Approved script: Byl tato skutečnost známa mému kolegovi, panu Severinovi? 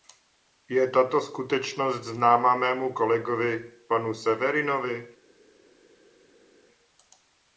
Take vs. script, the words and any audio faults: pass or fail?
fail